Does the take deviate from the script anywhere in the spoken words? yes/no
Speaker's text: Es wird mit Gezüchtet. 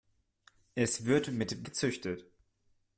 no